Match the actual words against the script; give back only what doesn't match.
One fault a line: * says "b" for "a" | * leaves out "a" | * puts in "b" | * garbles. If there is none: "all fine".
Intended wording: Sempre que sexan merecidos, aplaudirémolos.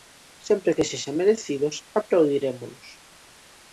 all fine